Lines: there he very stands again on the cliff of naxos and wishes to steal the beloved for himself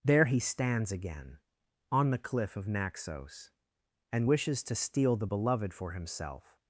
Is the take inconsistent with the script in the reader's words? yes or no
yes